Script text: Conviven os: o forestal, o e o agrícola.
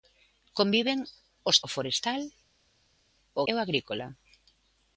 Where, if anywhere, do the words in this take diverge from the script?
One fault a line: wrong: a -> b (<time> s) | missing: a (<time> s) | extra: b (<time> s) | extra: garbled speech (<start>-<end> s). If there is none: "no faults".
no faults